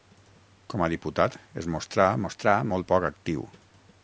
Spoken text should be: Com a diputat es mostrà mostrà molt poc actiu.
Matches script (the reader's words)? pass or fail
pass